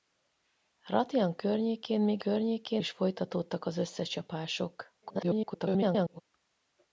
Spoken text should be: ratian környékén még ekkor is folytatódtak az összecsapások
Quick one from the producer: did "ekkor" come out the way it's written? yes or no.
no